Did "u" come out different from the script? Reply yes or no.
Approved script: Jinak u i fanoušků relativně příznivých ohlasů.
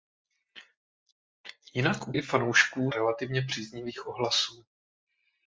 no